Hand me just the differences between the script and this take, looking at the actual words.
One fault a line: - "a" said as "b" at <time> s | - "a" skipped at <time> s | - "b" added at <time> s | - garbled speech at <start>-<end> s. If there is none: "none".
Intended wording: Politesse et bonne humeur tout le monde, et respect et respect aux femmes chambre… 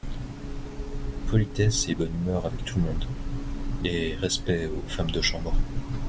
- "avec" added at 2.4 s
- "et respect" skipped at 4.7 s
- "de" added at 5.1 s